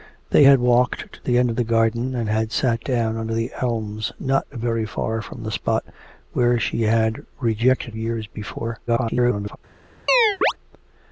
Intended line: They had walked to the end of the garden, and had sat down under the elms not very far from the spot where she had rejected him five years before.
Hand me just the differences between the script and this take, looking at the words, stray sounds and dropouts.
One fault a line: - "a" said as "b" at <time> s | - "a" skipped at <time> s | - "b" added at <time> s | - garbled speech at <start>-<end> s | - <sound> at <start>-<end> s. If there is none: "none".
- "him five" skipped at 8.0 s
- garbled speech at 8.9-9.6 s
- chirp at 10.1-10.5 s